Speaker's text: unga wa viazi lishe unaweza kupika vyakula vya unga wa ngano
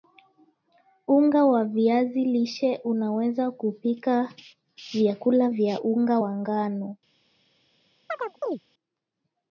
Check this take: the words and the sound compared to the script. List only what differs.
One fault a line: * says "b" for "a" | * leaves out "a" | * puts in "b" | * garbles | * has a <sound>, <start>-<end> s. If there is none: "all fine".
* has a chirp, 8.1-8.6 s